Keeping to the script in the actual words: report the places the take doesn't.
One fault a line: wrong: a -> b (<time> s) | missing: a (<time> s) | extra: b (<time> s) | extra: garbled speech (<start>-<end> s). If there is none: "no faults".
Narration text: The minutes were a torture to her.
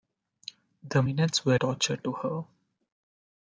missing: a (1.6 s)